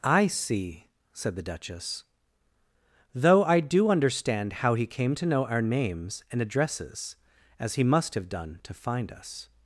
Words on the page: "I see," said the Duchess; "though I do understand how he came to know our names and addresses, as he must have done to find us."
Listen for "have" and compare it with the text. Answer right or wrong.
right